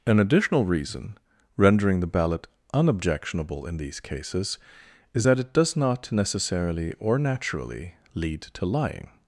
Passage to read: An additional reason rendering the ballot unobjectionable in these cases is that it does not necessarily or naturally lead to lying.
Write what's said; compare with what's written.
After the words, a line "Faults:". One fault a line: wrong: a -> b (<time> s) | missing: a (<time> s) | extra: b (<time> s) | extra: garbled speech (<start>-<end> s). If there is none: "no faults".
An additional reason rendering the ballot unobjectionable in these cases is that it does not necessarily or naturally lead to lying.
Faults:
no faults